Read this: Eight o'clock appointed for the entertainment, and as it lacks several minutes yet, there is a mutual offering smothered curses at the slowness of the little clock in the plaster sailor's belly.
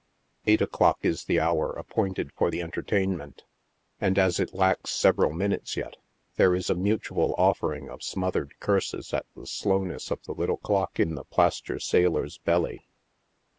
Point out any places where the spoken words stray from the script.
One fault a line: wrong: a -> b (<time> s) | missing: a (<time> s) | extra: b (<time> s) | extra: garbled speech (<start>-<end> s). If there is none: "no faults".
extra: is the hour (1.0 s)
extra: of (7.9 s)